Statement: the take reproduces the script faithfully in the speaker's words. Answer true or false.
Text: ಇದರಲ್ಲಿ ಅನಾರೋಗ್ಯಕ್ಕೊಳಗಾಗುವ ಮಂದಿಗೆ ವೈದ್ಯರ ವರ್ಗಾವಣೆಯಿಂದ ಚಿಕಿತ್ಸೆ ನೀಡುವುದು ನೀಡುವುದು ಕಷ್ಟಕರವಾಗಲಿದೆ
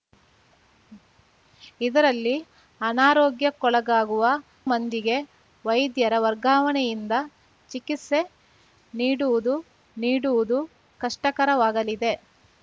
true